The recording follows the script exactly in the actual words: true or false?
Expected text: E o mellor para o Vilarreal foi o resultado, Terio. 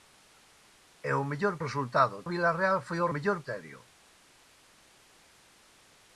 false